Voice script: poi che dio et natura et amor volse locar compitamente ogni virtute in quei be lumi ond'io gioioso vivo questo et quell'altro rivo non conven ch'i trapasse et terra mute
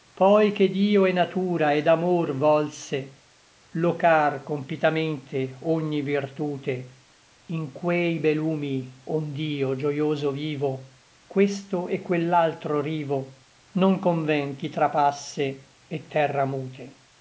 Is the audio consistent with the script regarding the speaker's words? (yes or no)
yes